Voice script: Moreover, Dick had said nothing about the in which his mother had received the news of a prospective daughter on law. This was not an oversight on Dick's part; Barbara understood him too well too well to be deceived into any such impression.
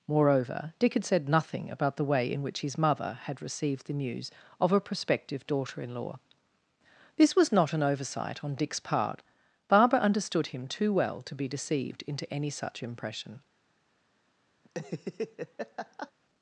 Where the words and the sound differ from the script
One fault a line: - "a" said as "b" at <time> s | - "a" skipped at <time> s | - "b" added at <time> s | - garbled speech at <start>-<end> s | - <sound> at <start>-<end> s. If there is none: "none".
- "way" added at 2.0 s
- "on" said as "in" at 5.8 s
- "too well" skipped at 11.2 s
- laugh at 14.6-16.1 s